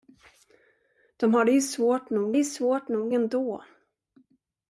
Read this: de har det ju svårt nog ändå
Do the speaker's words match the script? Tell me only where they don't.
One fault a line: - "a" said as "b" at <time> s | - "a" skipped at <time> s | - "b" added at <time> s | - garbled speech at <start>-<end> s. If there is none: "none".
- "ju svårt nog" added at 2.3 s